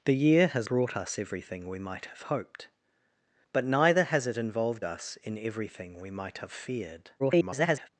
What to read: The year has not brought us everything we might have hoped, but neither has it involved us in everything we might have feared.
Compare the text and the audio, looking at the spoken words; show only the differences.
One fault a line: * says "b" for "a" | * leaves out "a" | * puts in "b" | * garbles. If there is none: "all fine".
* leaves out "not"
* garbles